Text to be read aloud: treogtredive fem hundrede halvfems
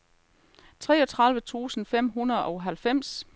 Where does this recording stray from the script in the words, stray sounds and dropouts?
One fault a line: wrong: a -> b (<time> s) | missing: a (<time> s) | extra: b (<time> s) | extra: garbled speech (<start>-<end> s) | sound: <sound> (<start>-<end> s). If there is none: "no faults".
extra: tusind (1.4 s)
extra: og (2.4 s)